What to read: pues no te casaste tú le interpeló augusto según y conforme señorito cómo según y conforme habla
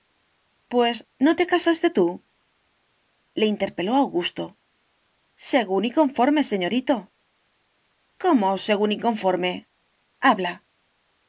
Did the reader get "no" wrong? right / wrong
right